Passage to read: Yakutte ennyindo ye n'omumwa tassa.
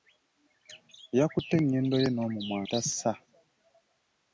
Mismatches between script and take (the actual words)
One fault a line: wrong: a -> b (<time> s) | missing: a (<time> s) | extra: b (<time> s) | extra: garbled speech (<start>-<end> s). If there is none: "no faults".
no faults